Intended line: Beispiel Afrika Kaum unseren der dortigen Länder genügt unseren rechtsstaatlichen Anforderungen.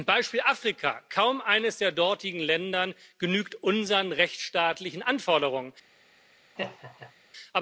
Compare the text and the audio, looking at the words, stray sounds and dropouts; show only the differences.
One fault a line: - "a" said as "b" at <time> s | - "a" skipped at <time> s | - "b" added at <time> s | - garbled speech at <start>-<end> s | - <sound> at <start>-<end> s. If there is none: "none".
- "unseren" said as "eines" at 1.4 s
- laugh at 6.6-7.1 s